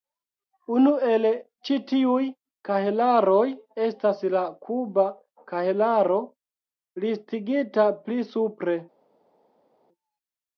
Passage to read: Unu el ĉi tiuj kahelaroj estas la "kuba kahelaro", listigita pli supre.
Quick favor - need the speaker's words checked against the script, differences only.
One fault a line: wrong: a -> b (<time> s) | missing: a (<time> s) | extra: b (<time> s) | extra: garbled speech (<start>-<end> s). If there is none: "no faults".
no faults